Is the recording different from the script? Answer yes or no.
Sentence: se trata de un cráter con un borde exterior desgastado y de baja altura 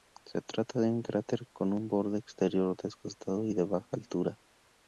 no